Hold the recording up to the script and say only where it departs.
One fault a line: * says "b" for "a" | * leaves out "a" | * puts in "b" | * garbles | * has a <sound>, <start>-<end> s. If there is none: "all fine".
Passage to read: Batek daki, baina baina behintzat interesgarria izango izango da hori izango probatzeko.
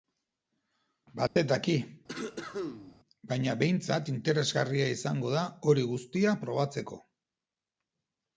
* has a dropout, 1.3-1.4 s
* has a cough, 2.1-3.0 s
* leaves out "baina"
* leaves out "izango"
* says "guztia" for "izango"